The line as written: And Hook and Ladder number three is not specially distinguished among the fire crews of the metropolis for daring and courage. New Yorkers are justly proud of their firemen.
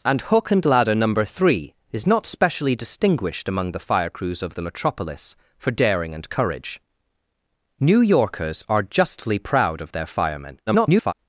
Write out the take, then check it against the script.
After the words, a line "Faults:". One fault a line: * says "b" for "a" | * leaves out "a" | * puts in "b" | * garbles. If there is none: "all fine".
And Hook and Ladder number three is not specially distinguished among the fire crews of the metropolis for daring and courage. New Yorkers are justly proud of their firemen. [garbled]
Faults:
* garbles